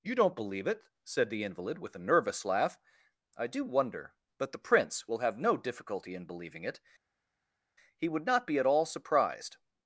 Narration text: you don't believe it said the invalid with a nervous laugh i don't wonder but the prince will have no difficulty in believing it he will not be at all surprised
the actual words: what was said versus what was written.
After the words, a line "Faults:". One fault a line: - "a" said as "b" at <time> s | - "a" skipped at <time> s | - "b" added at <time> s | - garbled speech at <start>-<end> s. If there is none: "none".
you don't believe it said the invalid with a nervous laugh i do wonder but the prince will have no difficulty in believing it he would not be at all surprised
Faults:
- "don't" said as "do" at 3.5 s
- "will" said as "would" at 8.1 s